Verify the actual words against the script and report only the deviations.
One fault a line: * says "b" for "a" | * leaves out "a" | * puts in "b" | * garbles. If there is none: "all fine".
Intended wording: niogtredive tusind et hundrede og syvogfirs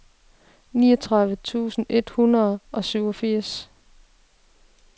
all fine